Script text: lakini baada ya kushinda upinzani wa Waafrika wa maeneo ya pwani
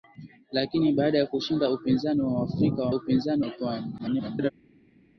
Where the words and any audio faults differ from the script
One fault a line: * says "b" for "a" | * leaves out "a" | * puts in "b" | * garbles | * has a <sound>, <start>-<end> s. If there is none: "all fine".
* says "upinzani" for "maeneo"
* garbles